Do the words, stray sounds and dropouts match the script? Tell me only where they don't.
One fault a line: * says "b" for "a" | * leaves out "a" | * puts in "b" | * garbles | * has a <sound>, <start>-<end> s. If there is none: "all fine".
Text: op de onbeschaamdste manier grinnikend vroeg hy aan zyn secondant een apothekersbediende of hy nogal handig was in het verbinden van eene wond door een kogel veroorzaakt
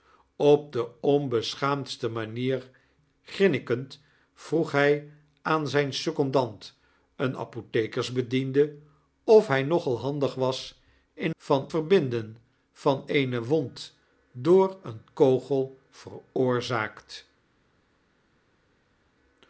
* says "van" for "het"